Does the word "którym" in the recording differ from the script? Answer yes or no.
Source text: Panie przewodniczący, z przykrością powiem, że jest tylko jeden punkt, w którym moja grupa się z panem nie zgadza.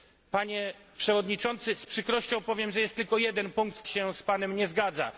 yes